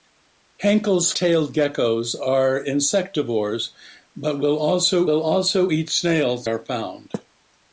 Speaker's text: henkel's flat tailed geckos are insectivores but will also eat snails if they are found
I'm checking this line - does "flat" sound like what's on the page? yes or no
no